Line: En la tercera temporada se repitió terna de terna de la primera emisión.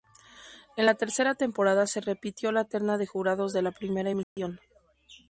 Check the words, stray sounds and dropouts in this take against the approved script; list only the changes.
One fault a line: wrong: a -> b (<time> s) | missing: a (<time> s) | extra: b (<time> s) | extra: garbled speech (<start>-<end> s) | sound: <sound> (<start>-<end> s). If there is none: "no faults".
extra: la (2.5 s)
wrong: terna -> jurados (3.1 s)
sound: dropout (4.2-4.4 s)